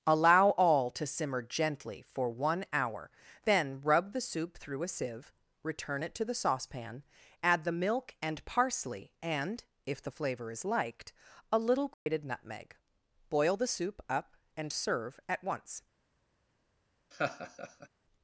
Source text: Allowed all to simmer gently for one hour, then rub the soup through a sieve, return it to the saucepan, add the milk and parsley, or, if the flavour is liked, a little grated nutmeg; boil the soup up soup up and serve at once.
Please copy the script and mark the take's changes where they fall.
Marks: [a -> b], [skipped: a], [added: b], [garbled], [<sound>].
[Allowed -> Allow] all to simmer gently for one hour, then rub the soup through a sieve, return it to the saucepan, add the milk and parsley, [or, -> and] if the flavour is liked, a little grated [dropout] nutmeg; boil the soup up [skipped: soup up] and serve at once. [laugh]